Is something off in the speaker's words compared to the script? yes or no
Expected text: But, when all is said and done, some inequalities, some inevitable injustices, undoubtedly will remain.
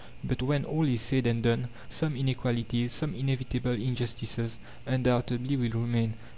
no